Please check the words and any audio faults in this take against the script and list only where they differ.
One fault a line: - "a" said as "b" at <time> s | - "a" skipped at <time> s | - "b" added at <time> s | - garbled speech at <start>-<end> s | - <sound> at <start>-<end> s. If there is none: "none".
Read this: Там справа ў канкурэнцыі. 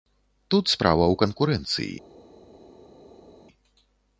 - "Там" said as "Тут" at 0.5 s